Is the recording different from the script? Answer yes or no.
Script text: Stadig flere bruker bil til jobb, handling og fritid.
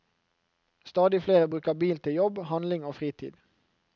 no